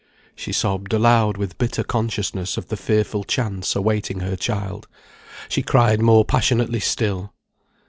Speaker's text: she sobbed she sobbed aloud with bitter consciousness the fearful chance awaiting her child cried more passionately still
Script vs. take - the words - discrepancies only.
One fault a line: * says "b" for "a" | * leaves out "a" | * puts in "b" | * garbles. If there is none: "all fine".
* leaves out "she sobbed"
* puts in "of"
* puts in "she"